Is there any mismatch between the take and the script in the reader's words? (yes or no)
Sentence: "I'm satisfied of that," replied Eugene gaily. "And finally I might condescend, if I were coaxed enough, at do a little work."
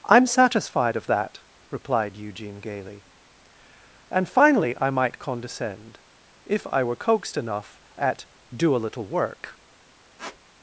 no